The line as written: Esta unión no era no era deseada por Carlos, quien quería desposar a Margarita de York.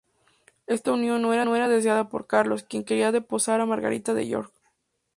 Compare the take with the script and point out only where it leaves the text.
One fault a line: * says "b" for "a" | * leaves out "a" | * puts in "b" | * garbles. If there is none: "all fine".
all fine